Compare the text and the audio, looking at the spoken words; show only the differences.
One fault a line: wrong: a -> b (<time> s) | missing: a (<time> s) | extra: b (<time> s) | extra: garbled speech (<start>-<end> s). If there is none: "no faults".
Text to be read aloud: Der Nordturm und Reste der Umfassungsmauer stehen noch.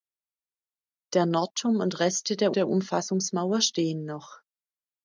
extra: der (2.5 s)